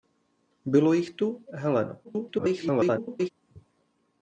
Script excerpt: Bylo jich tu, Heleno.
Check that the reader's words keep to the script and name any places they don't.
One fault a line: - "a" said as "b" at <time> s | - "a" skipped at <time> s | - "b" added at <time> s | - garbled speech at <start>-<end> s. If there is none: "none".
- garbled speech at 2.0-3.3 s